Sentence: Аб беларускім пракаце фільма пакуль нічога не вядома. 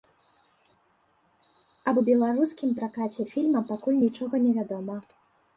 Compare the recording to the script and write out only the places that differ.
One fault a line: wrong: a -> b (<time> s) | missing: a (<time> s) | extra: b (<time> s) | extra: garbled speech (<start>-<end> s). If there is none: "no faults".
no faults